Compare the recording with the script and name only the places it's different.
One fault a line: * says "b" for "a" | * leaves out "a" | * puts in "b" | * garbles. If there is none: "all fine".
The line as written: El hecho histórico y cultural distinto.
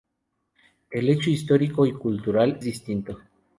all fine